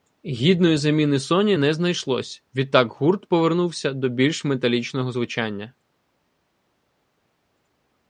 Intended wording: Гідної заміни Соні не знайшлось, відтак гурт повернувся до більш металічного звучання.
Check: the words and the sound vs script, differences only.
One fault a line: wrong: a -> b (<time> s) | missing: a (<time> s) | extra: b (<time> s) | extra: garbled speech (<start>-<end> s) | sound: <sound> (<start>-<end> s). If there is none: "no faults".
no faults